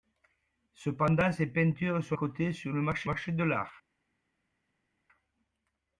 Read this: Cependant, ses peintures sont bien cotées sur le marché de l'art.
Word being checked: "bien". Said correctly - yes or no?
no